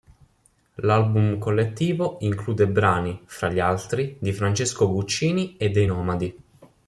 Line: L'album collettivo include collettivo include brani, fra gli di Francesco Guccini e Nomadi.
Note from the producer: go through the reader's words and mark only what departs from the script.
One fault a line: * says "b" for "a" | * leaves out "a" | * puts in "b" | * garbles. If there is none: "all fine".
* leaves out "collettivo include"
* puts in "altri"
* puts in "dei"